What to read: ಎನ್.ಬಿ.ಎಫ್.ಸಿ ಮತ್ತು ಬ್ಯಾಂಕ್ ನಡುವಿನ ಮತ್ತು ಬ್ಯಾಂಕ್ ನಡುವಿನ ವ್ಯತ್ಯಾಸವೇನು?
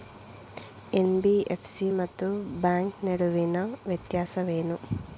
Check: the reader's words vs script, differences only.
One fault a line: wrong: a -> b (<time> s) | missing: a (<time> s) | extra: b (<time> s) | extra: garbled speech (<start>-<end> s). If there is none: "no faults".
missing: ಮತ್ತು ಬ್ಯಾಂಕ್ ನಡುವಿನ (3.6 s)